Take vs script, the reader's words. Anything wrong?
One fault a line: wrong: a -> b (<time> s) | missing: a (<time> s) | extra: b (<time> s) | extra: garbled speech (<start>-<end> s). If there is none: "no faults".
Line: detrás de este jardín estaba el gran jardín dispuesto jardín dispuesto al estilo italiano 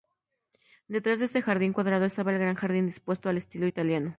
extra: cuadrado (1.7 s)
missing: jardín dispuesto (3.3 s)